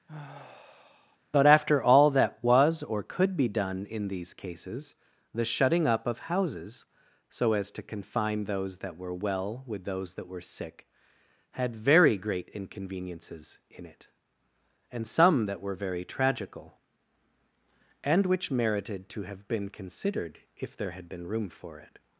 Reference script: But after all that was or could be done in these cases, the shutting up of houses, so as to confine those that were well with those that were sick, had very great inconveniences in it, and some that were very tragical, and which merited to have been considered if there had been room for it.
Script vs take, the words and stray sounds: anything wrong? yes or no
yes